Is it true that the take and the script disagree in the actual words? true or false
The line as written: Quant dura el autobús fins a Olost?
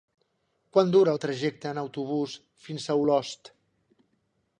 true